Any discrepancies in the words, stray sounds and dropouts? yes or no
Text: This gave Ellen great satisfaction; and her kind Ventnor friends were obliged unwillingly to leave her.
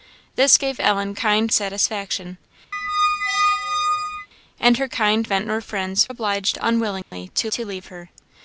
yes